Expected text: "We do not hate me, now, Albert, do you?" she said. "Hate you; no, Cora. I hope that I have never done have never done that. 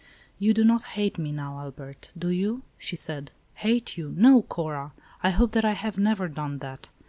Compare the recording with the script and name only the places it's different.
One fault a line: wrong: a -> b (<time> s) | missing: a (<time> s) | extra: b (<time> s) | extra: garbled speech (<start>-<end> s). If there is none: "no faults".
wrong: We -> You (0.4 s)
missing: have never done (6.6 s)